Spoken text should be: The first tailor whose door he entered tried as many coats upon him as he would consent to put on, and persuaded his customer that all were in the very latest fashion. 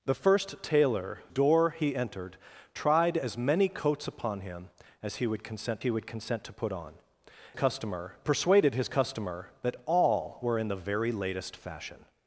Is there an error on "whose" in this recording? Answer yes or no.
yes